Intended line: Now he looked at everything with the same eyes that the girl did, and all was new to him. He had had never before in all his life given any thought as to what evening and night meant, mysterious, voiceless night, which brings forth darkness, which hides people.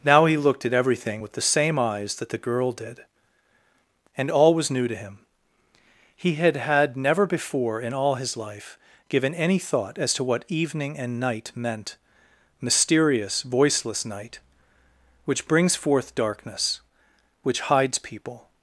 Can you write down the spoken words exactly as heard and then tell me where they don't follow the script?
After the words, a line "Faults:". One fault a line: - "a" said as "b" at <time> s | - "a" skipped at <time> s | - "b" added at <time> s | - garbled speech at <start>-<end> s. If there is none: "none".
Now he looked at everything with the same eyes that the girl did, and all was new to him. He had had never before in all his life given any thought as to what evening and night meant, mysterious, voiceless night, which brings forth darkness, which hides people.
Faults:
none